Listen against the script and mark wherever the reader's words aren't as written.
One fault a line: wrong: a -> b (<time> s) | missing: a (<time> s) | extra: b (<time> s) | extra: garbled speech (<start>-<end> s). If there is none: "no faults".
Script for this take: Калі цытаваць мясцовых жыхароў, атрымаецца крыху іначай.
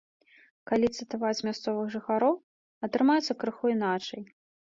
no faults